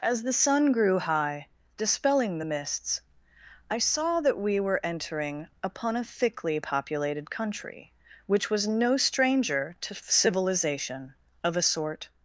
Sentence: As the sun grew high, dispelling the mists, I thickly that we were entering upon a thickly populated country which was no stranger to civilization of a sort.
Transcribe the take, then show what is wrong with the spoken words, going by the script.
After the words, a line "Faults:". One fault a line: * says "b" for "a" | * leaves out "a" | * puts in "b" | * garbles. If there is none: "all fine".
As the sun grew high, dispelling the mists, I saw that we were entering upon a thickly populated country which was no stranger to civilization of a sort.
Faults:
* says "saw" for "thickly"